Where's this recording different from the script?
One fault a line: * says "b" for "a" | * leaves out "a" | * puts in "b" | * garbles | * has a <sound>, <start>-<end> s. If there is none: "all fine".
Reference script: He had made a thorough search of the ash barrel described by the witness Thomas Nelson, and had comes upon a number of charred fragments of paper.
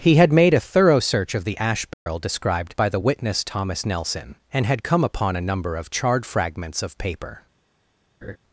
* has a dropout, 1.9-2.1 s
* says "come" for "comes"
* has a laugh, 8.2-8.4 s